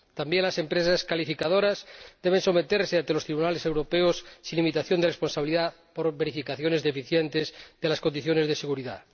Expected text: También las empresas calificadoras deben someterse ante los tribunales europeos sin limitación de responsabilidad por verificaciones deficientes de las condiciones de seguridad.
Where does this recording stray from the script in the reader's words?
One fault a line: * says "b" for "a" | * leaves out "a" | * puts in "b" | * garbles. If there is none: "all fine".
all fine